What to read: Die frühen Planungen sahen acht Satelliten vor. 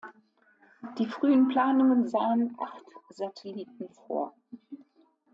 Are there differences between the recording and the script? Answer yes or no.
no